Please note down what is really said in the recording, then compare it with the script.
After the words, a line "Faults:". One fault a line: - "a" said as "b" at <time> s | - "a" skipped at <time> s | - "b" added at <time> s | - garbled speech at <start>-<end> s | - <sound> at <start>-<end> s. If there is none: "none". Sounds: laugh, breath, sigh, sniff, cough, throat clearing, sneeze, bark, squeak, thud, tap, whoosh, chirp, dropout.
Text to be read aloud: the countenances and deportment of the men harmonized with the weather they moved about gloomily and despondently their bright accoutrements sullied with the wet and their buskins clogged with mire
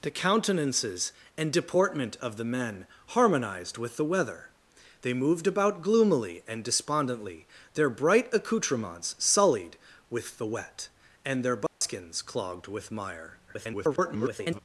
the countenances and deportment of the men harmonized with the weather they moved about gloomily and despondently their bright accoutrements sullied with the wet and their buskins clogged with mire [garbled]
Faults:
- dropout at 11.7-11.8 s
- garbled speech at 13.5-14.6 s